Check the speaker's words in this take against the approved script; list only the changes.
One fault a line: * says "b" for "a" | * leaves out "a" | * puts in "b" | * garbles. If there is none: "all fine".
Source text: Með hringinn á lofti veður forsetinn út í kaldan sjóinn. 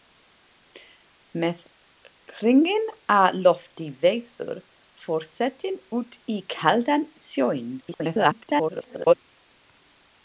* garbles